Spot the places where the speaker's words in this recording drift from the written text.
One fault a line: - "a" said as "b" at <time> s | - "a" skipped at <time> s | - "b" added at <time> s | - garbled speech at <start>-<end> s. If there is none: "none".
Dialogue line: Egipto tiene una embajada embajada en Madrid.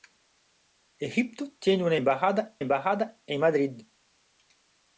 none